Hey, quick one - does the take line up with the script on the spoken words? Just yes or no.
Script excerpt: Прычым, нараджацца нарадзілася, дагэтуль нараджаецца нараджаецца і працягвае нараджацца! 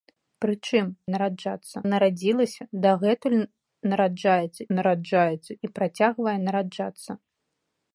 yes